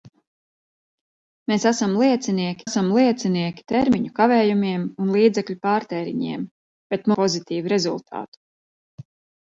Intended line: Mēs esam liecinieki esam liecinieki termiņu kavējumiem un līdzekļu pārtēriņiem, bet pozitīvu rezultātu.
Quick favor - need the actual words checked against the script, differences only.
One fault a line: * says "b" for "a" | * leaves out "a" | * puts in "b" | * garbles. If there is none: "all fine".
all fine